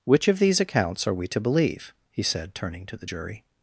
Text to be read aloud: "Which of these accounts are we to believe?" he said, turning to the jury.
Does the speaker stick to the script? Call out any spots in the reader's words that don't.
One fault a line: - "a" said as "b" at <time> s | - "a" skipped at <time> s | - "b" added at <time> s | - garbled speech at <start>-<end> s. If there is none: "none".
none